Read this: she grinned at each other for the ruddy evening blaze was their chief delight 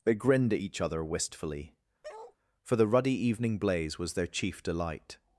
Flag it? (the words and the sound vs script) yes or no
yes